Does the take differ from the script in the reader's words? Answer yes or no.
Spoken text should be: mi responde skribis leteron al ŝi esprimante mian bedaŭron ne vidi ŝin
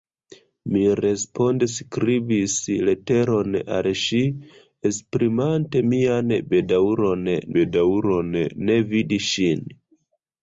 yes